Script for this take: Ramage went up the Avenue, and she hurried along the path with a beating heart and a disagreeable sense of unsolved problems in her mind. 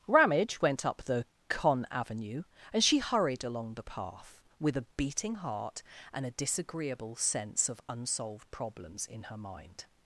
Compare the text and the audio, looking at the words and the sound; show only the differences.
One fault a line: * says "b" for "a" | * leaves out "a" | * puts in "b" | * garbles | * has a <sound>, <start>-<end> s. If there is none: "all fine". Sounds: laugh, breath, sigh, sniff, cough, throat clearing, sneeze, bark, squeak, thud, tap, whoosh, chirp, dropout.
* puts in "con"